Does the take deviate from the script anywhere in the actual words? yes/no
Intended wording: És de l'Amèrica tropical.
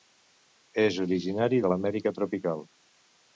yes